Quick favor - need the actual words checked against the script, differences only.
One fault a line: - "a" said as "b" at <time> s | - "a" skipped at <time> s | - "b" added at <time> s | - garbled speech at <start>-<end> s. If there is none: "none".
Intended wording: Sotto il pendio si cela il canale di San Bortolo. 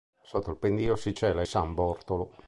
- "il canale di" skipped at 1.4 s